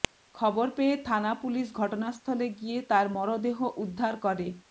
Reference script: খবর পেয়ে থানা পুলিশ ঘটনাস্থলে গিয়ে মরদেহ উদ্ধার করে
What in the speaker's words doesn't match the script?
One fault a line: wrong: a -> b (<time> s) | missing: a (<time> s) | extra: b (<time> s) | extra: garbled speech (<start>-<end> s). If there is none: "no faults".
extra: তার (2.9 s)